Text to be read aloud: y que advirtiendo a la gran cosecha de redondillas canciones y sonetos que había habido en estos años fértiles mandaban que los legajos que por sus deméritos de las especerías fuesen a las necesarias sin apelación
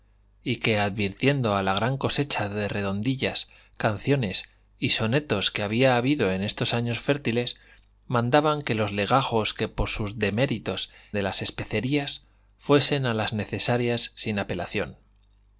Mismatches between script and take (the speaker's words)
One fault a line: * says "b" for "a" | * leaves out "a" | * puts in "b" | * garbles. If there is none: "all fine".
all fine